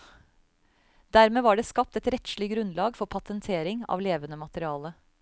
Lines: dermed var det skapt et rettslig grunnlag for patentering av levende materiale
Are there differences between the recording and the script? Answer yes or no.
no